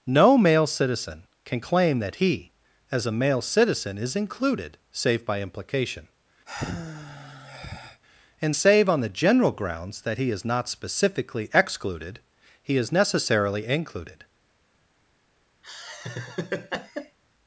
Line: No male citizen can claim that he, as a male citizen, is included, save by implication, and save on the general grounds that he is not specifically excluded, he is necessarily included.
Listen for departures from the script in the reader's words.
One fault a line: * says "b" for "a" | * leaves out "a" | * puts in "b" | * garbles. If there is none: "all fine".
all fine